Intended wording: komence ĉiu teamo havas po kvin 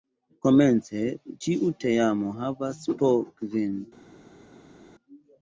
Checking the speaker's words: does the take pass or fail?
pass